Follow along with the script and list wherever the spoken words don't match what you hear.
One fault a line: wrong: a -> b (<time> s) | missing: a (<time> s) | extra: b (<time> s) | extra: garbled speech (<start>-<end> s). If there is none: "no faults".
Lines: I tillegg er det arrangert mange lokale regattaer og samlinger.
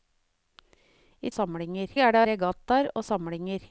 wrong: tillegg -> samlinger (1.3 s)
missing: arrangert mange lokale (2.2 s)